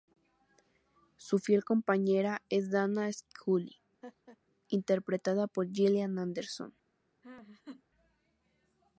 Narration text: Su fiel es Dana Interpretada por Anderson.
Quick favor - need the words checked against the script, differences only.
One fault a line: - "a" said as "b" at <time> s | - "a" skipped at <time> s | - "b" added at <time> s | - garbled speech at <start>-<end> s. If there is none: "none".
- "compañera" added at 1.6 s
- "Scully" added at 3.1 s
- "Gillian" added at 5.7 s